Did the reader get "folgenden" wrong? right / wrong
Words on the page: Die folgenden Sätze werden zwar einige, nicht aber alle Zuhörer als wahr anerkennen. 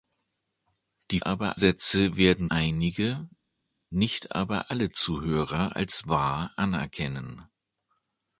wrong